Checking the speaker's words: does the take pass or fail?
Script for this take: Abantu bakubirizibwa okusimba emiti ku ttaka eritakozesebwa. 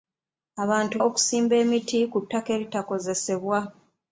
fail